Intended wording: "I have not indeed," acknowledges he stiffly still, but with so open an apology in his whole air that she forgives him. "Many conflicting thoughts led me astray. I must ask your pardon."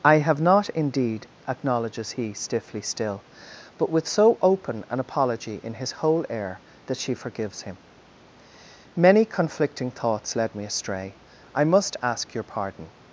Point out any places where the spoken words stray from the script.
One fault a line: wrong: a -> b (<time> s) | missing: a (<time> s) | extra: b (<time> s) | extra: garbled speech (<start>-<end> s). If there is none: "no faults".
no faults